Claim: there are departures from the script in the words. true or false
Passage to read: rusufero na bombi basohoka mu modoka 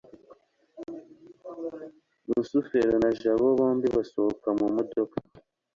true